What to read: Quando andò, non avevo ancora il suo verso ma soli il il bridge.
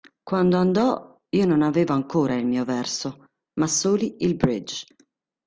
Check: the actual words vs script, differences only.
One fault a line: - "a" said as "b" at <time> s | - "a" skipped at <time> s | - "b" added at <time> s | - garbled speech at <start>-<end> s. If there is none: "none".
- "io" added at 1.3 s
- "suo" said as "mio" at 2.5 s
- "il" skipped at 4.3 s